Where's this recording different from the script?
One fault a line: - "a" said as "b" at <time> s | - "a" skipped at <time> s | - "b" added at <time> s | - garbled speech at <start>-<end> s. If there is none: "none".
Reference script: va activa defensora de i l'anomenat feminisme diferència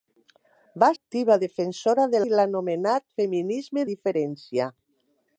none